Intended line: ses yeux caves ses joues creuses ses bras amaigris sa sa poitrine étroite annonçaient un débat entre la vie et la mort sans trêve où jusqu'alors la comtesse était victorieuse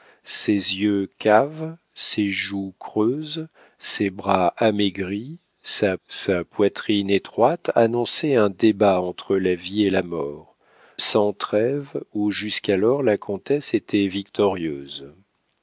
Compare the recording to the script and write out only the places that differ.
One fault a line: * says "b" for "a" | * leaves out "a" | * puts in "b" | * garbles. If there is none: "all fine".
all fine